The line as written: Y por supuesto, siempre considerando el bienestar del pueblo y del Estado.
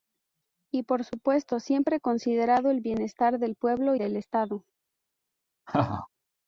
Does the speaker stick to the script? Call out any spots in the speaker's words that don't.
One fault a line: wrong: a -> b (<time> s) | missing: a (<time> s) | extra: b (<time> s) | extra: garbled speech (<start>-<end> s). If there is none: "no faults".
missing: y (4.0 s)